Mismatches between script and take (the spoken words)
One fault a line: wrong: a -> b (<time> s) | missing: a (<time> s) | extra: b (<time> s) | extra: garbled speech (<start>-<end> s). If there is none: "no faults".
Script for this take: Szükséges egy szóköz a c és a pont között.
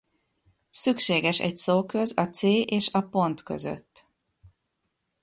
no faults